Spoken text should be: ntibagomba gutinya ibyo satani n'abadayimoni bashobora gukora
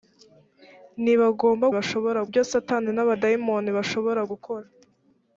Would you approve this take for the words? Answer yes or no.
no